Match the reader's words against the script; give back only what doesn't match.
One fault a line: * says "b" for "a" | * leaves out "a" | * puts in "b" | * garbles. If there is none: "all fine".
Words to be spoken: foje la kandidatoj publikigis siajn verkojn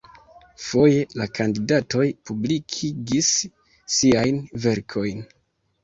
all fine